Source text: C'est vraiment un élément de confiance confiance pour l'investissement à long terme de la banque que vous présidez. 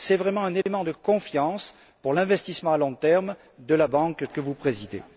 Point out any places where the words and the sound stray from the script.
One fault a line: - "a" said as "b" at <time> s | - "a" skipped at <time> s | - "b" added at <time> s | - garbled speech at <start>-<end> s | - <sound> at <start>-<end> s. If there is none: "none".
- dropout at 0.6-0.7 s
- "confiance" skipped at 1.7 s